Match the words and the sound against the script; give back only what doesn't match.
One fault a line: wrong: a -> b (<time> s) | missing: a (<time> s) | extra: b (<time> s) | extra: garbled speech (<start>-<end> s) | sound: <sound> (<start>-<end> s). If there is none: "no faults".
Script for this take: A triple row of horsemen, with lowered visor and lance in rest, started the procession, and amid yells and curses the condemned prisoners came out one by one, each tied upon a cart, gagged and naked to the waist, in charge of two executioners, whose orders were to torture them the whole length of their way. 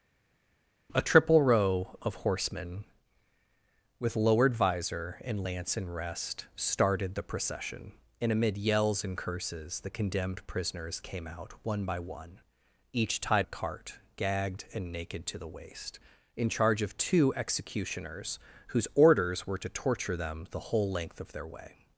missing: upon (13.4 s)